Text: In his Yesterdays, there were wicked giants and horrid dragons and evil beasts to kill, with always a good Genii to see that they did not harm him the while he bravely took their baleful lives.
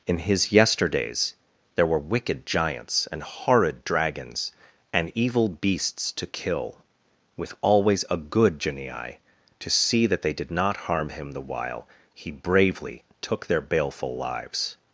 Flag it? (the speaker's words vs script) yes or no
no